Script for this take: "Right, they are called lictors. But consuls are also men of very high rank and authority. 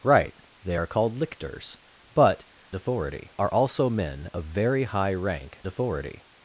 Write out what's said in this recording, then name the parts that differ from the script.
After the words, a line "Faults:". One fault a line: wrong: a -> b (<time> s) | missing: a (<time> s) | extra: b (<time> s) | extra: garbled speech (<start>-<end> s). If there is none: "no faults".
"Right, they are called lictors. But authority are also men of very high rank authority.
Faults:
wrong: consuls -> authority (2.7 s)
missing: and (5.6 s)